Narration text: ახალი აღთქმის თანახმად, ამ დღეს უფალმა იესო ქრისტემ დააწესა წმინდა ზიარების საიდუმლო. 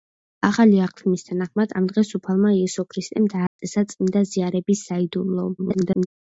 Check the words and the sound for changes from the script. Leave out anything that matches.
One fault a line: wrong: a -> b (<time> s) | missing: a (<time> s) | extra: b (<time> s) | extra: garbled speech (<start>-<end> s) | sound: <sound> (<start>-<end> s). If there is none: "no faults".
sound: dropout (3.5-3.6 s)
extra: garbled speech (5.6-6.1 s)